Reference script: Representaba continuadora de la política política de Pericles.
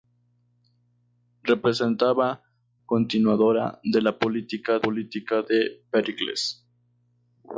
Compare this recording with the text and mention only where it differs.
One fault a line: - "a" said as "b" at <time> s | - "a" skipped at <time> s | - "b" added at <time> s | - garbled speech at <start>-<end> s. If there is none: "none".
none